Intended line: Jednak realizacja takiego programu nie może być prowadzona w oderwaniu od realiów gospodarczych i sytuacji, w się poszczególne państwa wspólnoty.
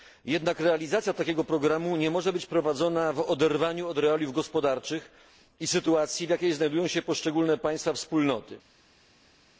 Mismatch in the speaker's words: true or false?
true